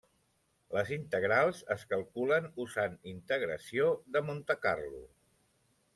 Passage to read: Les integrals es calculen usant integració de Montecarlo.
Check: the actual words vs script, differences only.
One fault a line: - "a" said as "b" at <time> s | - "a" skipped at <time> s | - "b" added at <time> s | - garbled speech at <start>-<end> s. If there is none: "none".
none